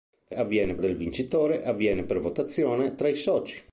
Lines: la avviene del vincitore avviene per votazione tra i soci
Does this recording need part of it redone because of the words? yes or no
no